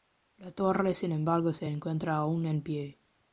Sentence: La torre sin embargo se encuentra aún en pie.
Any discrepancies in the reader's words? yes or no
no